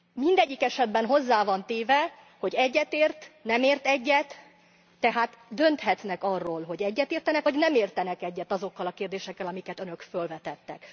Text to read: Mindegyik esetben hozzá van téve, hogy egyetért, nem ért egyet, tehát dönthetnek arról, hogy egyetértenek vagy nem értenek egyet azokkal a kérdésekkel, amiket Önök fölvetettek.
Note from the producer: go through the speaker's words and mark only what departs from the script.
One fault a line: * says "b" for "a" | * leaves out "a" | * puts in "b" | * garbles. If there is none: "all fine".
all fine